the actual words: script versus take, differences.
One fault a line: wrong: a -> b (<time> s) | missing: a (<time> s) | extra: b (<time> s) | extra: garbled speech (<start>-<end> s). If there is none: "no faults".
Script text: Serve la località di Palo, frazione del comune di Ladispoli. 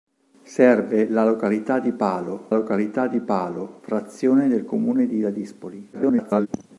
extra: località di Palo (2.5 s)
extra: garbled speech (5.9-6.5 s)